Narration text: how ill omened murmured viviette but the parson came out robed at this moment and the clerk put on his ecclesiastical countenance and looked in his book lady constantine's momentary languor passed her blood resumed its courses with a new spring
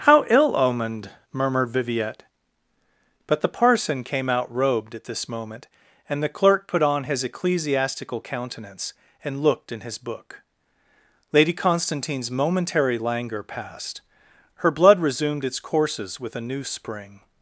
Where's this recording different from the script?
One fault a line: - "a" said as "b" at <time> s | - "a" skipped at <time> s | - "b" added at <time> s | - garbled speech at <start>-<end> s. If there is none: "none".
none